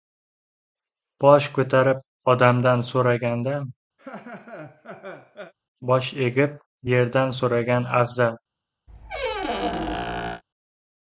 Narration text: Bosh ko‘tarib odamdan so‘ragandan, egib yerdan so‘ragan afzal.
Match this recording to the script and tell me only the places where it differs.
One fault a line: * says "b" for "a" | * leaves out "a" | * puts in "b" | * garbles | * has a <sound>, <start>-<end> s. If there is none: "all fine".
* has a laugh, 4.0-5.5 s
* puts in "bosh"
* has a squeak, 8.9-10.4 s